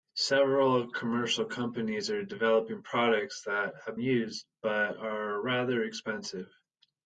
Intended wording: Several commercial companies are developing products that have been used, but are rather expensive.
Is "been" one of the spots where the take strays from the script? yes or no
yes